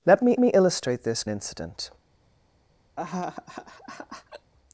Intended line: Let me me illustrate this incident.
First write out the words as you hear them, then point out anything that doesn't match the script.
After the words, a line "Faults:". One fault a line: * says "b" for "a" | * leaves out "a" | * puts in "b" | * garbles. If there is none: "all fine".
Let me me illustrate this incident.
Faults:
all fine